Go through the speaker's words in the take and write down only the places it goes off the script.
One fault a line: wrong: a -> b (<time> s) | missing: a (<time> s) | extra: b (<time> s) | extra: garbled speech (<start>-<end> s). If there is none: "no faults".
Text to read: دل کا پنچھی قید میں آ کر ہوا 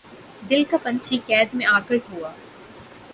no faults